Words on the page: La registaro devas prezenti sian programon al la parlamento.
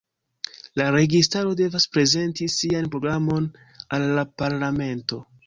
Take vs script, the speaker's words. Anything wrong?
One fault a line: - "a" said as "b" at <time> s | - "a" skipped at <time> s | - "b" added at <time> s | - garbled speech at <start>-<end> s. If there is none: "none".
none